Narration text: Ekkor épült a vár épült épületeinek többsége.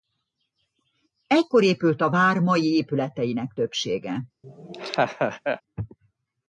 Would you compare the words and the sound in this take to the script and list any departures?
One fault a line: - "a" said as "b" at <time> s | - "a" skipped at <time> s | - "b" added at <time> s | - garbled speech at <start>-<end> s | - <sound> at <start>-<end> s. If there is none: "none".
- "épült" said as "mai" at 2.4 s
- laugh at 4.4-5.6 s